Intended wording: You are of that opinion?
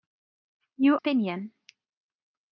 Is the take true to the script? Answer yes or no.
no